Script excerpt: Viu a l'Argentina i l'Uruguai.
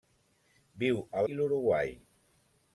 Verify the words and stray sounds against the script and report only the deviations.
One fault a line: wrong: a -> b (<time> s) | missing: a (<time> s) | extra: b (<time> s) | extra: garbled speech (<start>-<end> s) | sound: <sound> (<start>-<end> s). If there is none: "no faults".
missing: l'Argentina (1.2 s)